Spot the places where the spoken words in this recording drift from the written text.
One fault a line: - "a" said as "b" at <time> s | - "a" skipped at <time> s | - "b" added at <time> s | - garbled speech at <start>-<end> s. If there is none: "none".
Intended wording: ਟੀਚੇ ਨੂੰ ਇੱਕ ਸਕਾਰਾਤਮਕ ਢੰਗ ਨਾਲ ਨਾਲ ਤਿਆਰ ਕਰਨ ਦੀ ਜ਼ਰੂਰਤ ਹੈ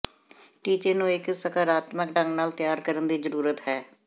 - "ਨਾਲ" skipped at 2.5 s